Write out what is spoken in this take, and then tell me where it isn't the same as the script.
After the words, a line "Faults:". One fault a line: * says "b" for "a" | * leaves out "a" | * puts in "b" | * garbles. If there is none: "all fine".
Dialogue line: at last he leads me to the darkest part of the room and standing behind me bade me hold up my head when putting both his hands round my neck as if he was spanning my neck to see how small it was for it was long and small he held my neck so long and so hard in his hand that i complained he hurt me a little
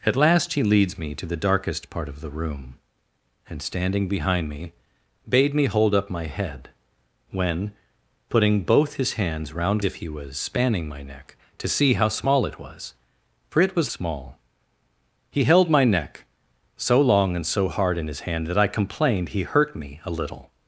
at last he leads me to the darkest part of the room and standing behind me bade me hold up my head when putting both his hands round if he was spanning my neck to see how small it was for it was small he held my neck so long and so hard in his hand that i complained he hurt me a little
Faults:
* leaves out "my neck as"
* leaves out "long and"